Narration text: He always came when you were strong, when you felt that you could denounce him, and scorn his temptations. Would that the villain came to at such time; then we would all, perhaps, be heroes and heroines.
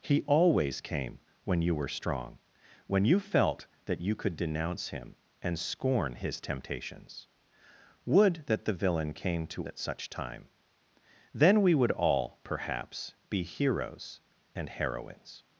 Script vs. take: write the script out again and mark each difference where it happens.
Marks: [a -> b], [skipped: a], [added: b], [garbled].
He always came when you were strong, when you felt that you could denounce him, and scorn his temptations. Would that the villain came to at such time; then we would all, perhaps, be heroes and heroines.